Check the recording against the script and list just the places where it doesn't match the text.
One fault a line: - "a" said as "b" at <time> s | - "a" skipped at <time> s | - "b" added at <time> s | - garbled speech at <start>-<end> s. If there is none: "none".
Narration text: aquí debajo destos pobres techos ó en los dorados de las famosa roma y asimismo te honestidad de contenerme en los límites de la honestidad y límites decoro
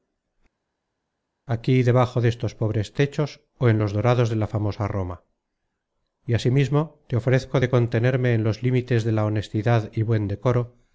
- "las" said as "la" at 4.4 s
- "honestidad" said as "ofrezco" at 7.2 s
- "límites" said as "buen" at 10.0 s